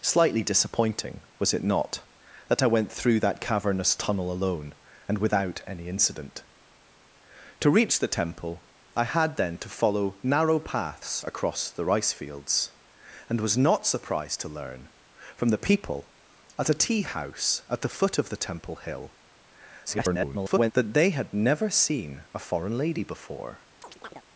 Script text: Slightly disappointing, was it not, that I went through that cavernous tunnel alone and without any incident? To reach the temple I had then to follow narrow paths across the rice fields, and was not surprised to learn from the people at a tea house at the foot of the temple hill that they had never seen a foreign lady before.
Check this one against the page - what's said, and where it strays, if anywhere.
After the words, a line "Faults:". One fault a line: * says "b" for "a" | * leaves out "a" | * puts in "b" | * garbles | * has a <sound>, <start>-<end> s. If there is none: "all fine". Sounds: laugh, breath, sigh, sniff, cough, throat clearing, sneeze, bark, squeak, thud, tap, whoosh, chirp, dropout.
Slightly disappointing, was it not, that I went through that cavernous tunnel alone and without any incident? To reach the temple I had then to follow narrow paths across the rice fields, and was not surprised to learn from the people at a tea house at the foot of the temple hill [garbled] that they had never seen a foreign lady before.
Faults:
* garbles
* has a chirp, 23.8-24.2 s